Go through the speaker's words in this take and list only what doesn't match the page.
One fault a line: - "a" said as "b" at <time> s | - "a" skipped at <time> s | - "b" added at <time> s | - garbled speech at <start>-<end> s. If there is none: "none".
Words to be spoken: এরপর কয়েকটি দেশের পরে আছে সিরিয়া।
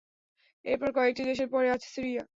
none